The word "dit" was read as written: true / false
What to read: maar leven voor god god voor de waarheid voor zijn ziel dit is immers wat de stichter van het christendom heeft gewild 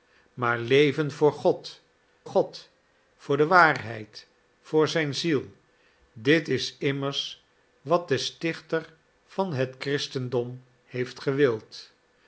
true